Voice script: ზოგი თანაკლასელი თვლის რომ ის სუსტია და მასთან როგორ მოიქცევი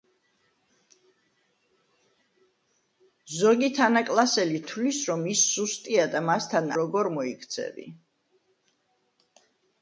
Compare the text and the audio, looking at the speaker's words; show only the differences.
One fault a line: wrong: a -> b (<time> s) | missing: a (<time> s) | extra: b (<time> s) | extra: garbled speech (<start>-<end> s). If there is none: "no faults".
no faults